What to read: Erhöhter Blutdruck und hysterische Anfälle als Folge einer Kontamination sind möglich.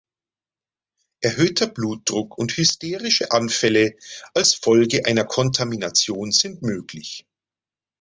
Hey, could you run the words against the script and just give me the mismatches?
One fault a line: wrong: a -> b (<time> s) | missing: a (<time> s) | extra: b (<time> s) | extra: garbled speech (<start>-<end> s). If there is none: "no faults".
no faults